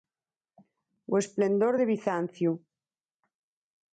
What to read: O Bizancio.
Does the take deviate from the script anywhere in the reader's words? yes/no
yes